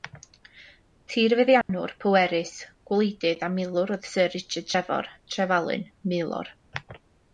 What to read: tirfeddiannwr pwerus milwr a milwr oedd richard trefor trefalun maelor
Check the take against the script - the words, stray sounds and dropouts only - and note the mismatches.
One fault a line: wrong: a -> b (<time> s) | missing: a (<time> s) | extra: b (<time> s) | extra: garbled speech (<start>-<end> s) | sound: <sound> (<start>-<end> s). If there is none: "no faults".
sound: dropout (1.6-1.7 s)
wrong: milwr -> gwleidydd (2.9 s)
extra: syr (4.1 s)